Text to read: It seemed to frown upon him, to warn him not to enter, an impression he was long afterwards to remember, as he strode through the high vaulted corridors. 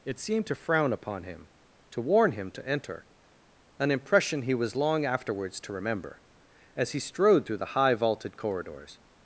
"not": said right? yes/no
no